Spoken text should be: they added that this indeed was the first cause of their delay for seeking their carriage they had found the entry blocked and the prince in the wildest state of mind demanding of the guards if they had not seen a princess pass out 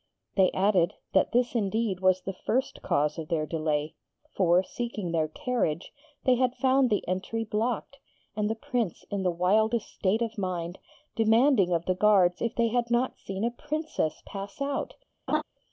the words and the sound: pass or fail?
fail